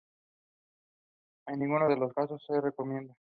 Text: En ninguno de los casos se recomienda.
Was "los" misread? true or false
false